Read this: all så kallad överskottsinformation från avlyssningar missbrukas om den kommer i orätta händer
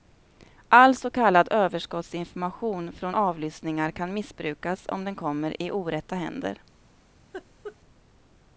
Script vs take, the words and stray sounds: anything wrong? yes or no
yes